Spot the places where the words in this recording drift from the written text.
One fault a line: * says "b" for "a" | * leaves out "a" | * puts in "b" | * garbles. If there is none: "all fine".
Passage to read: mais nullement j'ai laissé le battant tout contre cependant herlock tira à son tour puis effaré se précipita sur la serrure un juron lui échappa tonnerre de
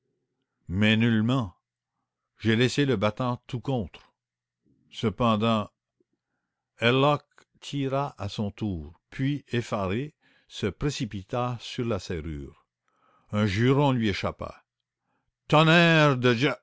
all fine